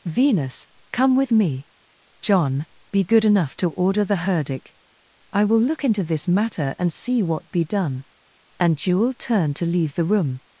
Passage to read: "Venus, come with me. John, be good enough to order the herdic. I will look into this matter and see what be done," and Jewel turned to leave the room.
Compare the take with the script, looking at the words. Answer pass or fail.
pass